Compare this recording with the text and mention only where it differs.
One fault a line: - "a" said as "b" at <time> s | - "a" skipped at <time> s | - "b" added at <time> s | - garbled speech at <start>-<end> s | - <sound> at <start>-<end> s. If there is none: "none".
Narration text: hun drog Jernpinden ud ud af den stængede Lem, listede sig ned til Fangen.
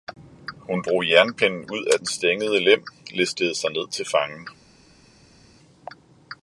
- "ud" skipped at 1.9 s